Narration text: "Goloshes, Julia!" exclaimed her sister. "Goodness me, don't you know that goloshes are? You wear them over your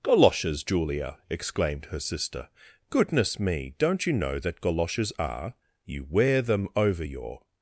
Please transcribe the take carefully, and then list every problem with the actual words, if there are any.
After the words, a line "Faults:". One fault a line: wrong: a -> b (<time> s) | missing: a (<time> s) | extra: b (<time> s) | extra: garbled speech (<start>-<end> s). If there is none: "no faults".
"Goloshes, Julia!" exclaimed her sister. "Goodness me, don't you know that goloshes are? You wear them over your
Faults:
no faults